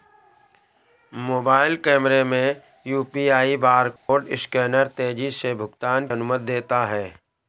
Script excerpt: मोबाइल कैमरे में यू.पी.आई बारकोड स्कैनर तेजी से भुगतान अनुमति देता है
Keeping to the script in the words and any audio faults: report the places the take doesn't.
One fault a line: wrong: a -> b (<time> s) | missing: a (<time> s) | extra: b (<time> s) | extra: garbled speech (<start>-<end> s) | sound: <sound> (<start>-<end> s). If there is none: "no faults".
sound: dropout (4.0-4.1 s)